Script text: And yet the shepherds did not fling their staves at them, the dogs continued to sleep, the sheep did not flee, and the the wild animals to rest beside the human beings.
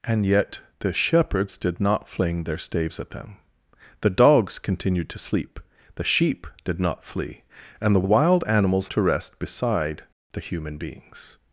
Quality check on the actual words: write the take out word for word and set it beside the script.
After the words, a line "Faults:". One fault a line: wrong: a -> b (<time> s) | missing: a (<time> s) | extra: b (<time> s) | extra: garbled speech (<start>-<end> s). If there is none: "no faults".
And yet the shepherds did not fling their staves at them, the dogs continued to sleep, the sheep did not flee, and the the wild animals to rest beside the human beings.
Faults:
no faults